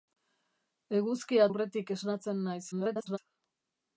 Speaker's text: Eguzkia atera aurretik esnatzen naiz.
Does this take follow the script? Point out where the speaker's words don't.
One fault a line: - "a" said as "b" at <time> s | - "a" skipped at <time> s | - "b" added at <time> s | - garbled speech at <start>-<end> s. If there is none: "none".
- "atera" skipped at 1.4 s
- garbled speech at 2.7-3.2 s